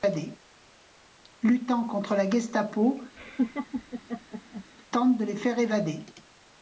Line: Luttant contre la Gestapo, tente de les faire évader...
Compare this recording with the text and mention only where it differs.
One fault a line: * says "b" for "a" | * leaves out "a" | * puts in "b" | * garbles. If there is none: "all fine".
all fine